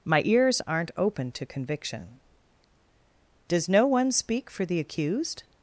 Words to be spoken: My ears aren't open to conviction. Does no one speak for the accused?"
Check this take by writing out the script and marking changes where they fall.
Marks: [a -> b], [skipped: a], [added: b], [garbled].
My ears aren't open to conviction. Does no one speak for the accused?"